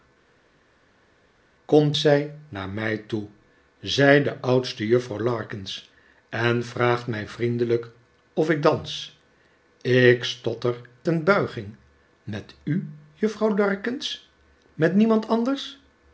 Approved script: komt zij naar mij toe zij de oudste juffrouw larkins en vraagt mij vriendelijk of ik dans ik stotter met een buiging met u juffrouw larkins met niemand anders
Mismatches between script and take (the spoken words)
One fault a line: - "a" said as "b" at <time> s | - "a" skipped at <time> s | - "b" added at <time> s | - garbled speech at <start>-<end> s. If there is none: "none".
- "met" skipped at 10.8 s